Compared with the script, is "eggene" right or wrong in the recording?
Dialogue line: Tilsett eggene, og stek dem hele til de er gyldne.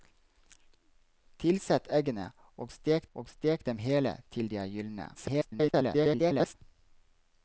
right